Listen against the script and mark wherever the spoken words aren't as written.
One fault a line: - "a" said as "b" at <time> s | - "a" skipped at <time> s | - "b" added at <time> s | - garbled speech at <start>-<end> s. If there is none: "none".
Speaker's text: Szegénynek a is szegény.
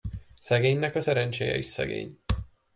- "szerencséje" added at 1.0 s